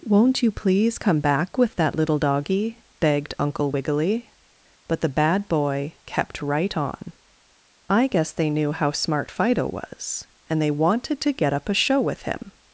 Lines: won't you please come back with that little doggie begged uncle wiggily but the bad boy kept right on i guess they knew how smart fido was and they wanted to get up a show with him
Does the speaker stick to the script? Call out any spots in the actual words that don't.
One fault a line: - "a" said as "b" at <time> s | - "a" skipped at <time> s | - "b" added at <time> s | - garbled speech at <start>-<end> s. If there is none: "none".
none